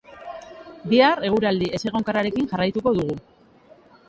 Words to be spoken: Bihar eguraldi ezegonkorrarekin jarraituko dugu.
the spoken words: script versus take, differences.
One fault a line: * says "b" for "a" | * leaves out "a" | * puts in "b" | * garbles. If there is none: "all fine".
all fine